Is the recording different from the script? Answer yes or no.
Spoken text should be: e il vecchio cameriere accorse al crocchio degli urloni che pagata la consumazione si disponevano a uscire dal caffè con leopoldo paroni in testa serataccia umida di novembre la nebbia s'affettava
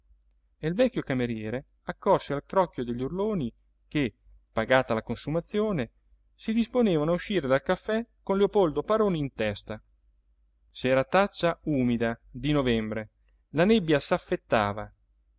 no